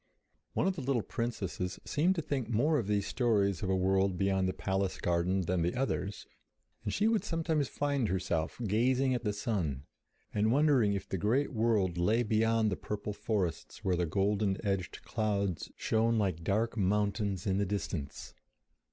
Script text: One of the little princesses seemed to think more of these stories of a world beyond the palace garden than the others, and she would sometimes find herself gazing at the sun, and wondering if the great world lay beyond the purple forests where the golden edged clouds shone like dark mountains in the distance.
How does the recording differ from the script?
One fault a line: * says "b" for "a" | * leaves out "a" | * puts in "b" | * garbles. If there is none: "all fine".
all fine